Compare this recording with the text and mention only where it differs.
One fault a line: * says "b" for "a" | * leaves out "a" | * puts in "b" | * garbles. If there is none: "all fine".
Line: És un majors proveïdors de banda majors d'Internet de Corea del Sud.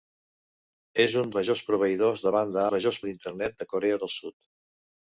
all fine